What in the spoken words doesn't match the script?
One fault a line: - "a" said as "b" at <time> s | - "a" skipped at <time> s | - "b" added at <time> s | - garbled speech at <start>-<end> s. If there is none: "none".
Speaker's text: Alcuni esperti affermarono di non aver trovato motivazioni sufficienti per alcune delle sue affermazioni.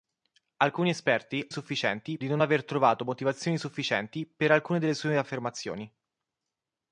- "affermarono" said as "sufficienti" at 1.5 s